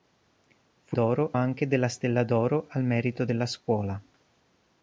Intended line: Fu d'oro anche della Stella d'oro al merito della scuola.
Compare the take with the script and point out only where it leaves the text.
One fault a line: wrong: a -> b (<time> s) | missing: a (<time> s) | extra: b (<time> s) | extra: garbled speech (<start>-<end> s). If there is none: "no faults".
no faults